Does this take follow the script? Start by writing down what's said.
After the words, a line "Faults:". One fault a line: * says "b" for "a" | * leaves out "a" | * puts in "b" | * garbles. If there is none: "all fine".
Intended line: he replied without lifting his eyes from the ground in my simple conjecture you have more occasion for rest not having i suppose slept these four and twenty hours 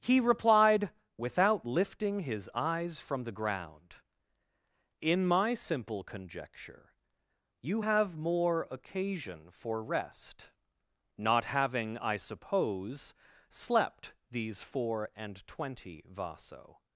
he replied without lifting his eyes from the ground in my simple conjecture you have more occasion for rest not having i suppose slept these four and twenty vaso
Faults:
* says "vaso" for "hours"